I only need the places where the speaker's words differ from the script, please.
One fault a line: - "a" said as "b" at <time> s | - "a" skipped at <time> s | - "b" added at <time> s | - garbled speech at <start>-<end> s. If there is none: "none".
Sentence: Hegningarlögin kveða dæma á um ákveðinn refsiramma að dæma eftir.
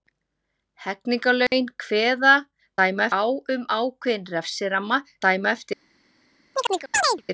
none